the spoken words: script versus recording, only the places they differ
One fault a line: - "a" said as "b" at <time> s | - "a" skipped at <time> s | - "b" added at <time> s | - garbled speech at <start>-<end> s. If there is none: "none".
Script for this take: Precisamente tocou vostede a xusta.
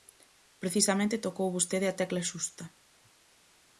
- "tecla" added at 2.0 s